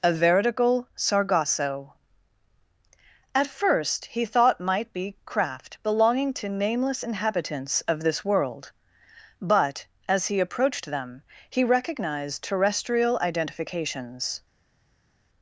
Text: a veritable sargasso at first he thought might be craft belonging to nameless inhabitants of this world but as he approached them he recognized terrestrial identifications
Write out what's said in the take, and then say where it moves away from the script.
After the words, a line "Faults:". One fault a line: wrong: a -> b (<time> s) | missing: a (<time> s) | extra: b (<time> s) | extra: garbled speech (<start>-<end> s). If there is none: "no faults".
a veritable sargasso at first he thought might be craft belonging to nameless inhabitants of this world but as he approached them he recognized terrestrial identifications
Faults:
no faults